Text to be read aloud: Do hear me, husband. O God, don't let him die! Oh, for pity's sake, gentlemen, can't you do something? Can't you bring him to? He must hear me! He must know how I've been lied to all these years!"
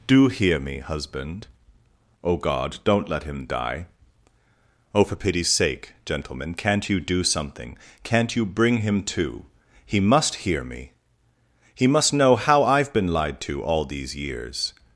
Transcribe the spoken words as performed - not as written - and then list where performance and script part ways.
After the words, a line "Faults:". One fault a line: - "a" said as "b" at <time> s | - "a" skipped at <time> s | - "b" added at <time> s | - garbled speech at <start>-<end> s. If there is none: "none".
Do hear me, husband. O God, don't let him die! Oh, for pity's sake, gentlemen, can't you do something? Can't you bring him to? He must hear me! He must know how I've been lied to all these years!"
Faults:
none